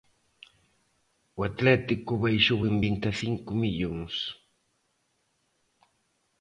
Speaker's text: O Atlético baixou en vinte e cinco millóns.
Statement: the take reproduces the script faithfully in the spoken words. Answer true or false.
true